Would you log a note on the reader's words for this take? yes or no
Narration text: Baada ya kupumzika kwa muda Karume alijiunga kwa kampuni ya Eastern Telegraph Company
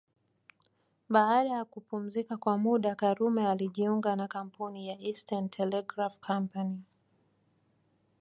yes